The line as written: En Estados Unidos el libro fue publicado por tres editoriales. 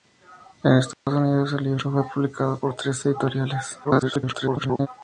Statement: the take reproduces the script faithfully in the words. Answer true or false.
false